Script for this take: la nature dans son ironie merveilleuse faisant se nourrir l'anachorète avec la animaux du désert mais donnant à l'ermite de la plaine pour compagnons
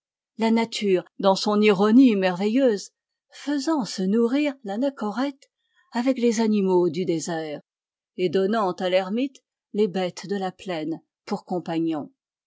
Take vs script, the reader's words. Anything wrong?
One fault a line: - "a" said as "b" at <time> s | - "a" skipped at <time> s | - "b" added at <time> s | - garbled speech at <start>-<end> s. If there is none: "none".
- "la" said as "les" at 6.2 s
- "mais" said as "et" at 8.2 s
- "les bêtes" added at 9.7 s